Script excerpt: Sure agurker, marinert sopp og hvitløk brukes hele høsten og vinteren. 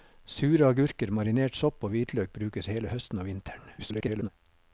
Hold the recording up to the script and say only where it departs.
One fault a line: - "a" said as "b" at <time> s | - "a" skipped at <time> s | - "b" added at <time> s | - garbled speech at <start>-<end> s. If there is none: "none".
- garbled speech at 3.8-4.3 s